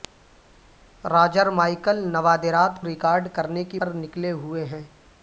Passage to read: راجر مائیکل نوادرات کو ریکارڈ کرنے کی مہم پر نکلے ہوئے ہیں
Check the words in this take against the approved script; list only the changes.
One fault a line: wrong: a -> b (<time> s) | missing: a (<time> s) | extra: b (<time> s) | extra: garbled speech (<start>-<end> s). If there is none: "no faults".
missing: کو (2.8 s)
missing: مہم (3.8 s)